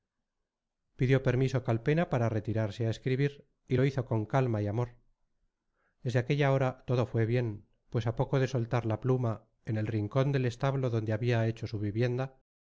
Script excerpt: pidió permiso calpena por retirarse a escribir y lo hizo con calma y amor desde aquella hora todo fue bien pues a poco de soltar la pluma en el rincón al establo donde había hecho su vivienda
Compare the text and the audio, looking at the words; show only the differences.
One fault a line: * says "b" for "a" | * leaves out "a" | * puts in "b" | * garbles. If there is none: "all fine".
* says "para" for "por"
* says "del" for "al"